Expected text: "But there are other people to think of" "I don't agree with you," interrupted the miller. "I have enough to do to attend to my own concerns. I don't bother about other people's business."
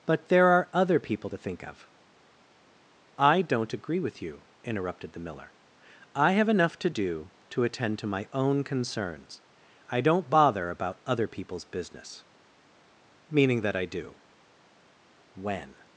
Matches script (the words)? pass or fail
fail